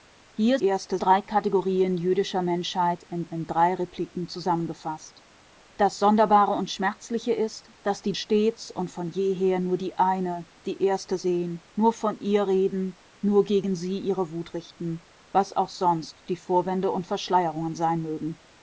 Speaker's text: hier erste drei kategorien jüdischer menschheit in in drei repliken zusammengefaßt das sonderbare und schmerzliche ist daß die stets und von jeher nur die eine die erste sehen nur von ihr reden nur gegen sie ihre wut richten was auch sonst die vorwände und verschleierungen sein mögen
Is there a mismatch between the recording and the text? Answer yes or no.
no